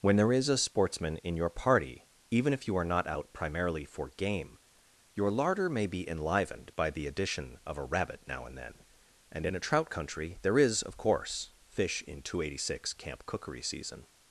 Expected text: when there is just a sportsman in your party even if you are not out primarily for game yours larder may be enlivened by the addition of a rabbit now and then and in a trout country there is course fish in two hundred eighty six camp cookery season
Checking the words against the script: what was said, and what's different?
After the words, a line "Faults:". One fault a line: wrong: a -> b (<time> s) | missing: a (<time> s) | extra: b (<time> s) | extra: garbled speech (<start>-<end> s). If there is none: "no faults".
when there is a sportsman in your party even if you are not out primarily for game your larder may be enlivened by the addition of a rabbit now and then and in a trout country there is of course fish in two hundred eighty six camp cookery season
Faults:
missing: just (0.5 s)
wrong: yours -> your (5.1 s)
extra: of (10.8 s)